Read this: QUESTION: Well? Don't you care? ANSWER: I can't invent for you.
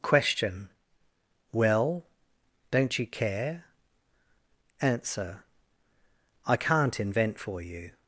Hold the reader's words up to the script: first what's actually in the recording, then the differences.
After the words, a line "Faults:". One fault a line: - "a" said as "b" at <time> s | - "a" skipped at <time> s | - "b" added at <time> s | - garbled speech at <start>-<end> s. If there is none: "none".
QUESTION: Well? Don't you care? ANSWER: I can't invent for you.
Faults:
none